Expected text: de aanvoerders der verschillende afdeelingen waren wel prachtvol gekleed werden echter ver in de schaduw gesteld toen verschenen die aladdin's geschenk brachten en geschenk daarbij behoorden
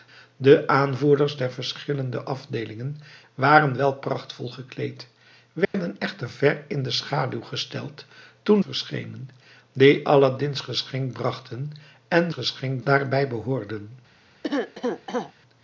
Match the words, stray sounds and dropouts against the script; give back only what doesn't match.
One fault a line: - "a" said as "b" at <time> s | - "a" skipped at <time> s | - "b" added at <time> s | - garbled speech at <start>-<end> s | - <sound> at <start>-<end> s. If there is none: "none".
- dropout at 5.6-5.7 s
- cough at 14.4-15.3 s